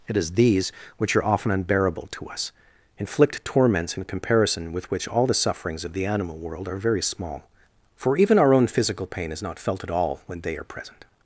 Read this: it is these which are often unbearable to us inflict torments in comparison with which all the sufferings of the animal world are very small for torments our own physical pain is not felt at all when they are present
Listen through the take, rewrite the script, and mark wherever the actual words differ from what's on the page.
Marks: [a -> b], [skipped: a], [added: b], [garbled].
it is these which are often unbearable to us inflict torments in comparison with which all the sufferings of the animal world are very small for [torments -> even] our own physical pain is not felt at all when they are present